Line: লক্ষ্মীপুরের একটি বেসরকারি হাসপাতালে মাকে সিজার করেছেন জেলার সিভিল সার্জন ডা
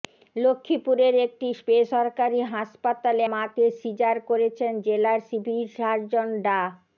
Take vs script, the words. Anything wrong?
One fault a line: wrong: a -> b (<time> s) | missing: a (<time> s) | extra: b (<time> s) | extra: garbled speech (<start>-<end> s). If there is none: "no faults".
no faults